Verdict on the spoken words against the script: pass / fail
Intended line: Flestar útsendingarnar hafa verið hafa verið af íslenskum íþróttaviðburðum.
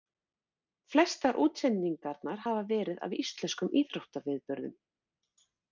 fail